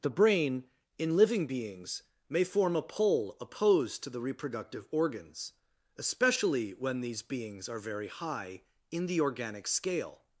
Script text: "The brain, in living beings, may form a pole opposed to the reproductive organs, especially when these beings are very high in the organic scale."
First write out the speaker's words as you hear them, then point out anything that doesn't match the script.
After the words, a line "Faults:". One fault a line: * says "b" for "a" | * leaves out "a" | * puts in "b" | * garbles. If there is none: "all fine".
"The brain, in living beings, may form a pole opposed to the reproductive organs, especially when these beings are very high in the organic scale."
Faults:
all fine